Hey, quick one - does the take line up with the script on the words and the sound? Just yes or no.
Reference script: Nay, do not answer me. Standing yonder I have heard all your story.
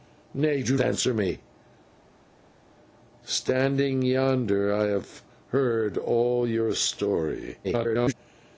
no